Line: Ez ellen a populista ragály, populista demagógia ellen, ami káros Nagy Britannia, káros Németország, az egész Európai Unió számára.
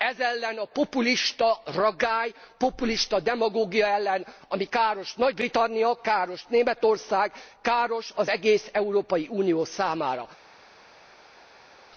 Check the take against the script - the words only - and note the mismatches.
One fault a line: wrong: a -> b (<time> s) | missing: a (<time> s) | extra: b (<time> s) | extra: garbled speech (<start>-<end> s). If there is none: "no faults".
extra: káros (7.6 s)